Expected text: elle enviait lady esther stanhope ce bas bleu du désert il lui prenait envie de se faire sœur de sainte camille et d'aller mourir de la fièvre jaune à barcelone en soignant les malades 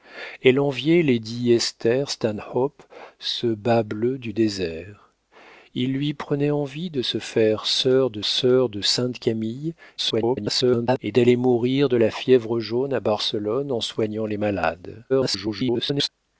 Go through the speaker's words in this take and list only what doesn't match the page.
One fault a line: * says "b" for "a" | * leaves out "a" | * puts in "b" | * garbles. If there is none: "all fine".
* puts in "sœur de"
* garbles
* garbles